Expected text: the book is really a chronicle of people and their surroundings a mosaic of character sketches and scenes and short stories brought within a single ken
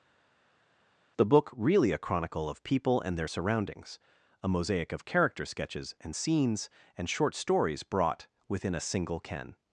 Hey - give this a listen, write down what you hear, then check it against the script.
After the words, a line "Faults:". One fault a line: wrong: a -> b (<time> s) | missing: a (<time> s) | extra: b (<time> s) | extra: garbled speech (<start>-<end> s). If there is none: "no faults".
the book really a chronicle of people and their surroundings a mosaic of character sketches and scenes and short stories brought within a single ken
Faults:
missing: is (1.5 s)